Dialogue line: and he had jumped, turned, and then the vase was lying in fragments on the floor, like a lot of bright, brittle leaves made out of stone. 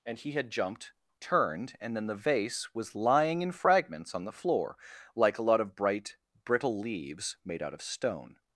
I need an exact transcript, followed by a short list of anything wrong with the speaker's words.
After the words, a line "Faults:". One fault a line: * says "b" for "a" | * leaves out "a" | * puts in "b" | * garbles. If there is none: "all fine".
and he had jumped, turned, and then the vase was lying in fragments on the floor, like a lot of bright, brittle leaves made out of stone.
Faults:
all fine